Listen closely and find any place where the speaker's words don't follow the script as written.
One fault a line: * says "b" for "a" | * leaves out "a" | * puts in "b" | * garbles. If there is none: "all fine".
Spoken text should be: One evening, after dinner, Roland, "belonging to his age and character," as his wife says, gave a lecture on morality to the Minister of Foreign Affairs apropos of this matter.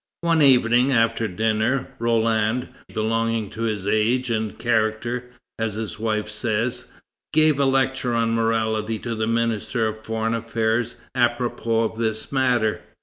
all fine